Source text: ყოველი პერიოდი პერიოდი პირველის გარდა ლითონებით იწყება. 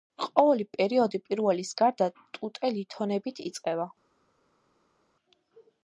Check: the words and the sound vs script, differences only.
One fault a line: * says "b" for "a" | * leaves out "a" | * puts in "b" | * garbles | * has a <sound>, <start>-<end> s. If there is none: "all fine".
* leaves out "პერიოდი"
* puts in "ტუტე"